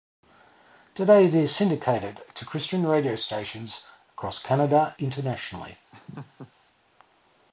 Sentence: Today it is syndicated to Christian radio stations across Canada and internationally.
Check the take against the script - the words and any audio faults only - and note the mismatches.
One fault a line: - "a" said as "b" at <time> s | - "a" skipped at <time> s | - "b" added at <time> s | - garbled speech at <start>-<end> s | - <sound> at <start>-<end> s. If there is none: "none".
- "and" skipped at 5.0 s
- laugh at 5.9-6.5 s